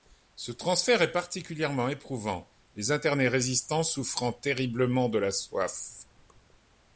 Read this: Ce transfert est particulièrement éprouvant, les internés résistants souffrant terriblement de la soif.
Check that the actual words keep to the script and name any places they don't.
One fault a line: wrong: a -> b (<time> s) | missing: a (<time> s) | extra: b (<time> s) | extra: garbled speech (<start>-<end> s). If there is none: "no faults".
no faults